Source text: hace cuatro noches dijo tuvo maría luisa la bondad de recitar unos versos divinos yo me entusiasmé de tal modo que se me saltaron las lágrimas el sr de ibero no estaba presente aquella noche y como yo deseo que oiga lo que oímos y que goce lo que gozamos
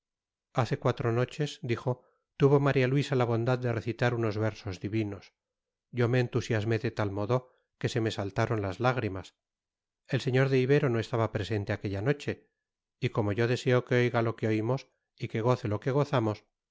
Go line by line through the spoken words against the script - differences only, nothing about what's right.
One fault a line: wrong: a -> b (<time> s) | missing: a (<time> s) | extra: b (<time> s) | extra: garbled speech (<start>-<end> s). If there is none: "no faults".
no faults